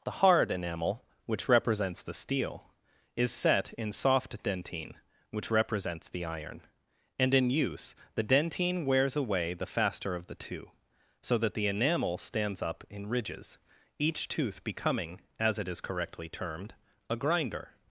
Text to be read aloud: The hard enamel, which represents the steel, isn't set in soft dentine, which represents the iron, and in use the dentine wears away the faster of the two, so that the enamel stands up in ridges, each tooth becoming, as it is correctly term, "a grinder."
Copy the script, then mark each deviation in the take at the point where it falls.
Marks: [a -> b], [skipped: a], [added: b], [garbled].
The hard enamel, which represents the steel, [isn't -> is] set in soft dentine, which represents the iron, and in use the dentine wears away the faster of the two, so that the enamel stands up in ridges, each tooth becoming, as it is correctly [term, -> termed] "a grinder."